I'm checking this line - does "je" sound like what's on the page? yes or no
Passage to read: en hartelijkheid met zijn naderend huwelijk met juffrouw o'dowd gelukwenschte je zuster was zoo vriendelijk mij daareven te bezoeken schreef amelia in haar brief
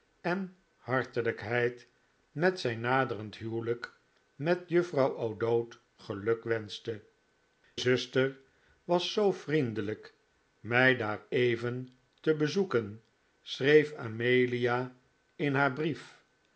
no